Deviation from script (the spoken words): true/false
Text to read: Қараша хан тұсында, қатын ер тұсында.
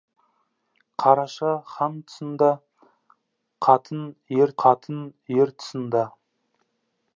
true